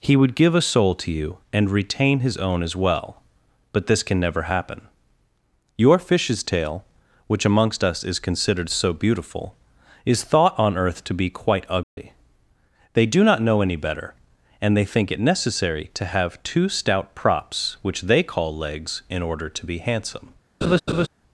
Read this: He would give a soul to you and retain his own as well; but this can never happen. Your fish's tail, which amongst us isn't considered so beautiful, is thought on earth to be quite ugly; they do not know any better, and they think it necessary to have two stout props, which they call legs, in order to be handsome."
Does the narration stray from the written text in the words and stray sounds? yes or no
yes